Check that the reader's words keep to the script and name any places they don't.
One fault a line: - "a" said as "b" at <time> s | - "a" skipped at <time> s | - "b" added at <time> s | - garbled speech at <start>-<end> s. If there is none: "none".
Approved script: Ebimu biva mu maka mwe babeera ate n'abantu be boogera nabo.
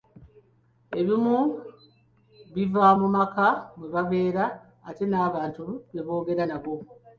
none